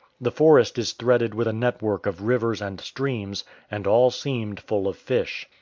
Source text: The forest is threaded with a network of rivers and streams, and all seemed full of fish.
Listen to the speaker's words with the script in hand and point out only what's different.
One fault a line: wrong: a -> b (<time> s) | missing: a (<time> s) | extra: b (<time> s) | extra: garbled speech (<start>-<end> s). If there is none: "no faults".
no faults